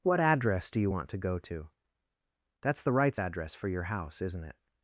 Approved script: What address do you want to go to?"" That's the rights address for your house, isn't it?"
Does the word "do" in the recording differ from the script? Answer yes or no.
no